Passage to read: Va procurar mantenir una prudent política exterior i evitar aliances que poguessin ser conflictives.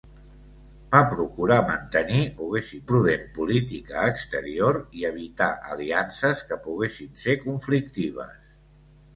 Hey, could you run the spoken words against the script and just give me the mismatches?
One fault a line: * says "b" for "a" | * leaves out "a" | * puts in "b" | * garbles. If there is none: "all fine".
* says "poguessin" for "una"